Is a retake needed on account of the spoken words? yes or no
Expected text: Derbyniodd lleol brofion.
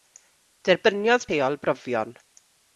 no